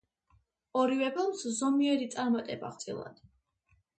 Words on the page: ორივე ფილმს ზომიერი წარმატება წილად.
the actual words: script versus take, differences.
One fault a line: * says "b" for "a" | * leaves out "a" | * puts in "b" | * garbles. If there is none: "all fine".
all fine